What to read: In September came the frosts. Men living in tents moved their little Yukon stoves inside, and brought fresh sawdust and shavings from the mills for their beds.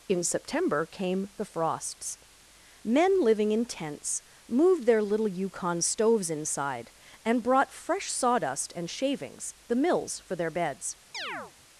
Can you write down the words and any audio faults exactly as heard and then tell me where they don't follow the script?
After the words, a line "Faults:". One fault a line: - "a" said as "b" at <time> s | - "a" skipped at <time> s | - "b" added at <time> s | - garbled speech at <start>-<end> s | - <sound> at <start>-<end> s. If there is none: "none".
In September came the frosts. Men living in tents moved their little Yukon stoves inside, and brought fresh sawdust and shavings the mills for their beds.
Faults:
- "from" skipped at 9.5 s
- chirp at 11.1-11.5 s